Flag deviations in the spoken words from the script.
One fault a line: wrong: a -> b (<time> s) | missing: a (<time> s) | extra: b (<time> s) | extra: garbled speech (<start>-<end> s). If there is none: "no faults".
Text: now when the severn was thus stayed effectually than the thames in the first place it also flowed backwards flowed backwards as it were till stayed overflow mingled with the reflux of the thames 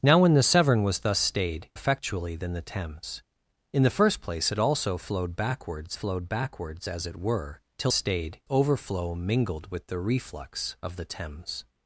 no faults